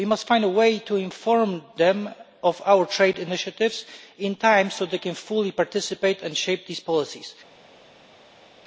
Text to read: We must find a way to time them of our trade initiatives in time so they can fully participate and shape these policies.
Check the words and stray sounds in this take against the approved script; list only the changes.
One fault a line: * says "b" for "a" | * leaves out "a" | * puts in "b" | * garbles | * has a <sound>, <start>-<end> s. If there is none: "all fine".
* says "inform" for "time"